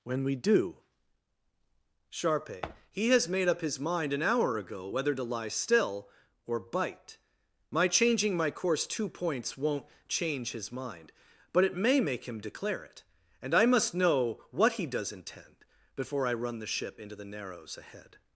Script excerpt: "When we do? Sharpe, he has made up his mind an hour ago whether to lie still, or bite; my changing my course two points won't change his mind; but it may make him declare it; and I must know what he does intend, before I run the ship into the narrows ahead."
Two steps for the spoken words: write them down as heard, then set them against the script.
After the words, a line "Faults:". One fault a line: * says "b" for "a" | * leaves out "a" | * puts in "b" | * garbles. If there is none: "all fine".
"When we do? Sharpe, he has made up his mind an hour ago whether to lie still, or bite; my changing my course two points won't change his mind; but it may make him declare it; and I must know what he does intend, before I run the ship into the narrows ahead."
Faults:
all fine